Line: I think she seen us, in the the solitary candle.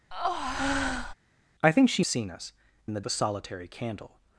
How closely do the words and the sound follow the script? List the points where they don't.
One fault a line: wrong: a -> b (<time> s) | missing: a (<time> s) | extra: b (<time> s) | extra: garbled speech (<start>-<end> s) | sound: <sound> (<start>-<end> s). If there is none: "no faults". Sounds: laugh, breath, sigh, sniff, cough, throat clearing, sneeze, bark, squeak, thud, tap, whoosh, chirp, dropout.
sound: breath (0.1-1.1 s)